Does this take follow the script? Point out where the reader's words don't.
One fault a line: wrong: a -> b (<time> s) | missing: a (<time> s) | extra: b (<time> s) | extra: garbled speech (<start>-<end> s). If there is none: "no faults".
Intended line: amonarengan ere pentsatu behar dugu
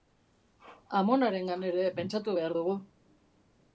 no faults